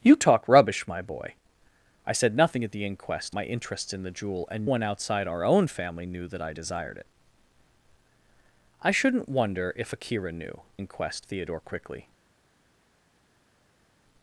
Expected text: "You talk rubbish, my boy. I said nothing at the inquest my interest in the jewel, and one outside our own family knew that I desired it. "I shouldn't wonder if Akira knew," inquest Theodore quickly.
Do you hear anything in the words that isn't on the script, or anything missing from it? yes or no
no